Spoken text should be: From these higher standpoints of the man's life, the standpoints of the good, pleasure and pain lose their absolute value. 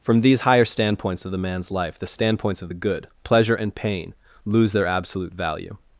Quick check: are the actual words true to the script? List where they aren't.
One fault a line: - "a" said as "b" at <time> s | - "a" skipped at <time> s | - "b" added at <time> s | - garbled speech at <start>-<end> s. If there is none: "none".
none